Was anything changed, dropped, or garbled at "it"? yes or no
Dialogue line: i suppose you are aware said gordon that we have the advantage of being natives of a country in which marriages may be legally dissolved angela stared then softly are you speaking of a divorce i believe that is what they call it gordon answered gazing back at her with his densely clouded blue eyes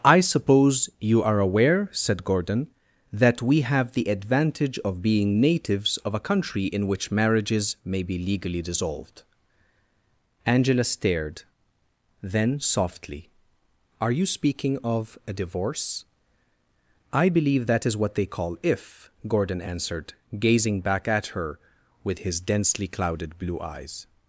yes